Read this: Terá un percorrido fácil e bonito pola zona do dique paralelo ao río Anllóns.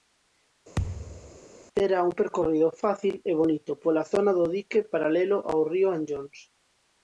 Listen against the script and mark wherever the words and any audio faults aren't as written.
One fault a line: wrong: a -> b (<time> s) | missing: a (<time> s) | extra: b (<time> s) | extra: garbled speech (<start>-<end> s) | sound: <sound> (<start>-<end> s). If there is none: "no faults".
sound: thud (0.8-1.4 s)